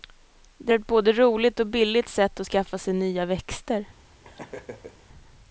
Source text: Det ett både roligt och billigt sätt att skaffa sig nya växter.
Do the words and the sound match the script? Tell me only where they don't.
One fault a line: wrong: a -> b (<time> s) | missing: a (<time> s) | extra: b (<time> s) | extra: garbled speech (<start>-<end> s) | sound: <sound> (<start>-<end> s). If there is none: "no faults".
sound: laugh (4.2-5.1 s)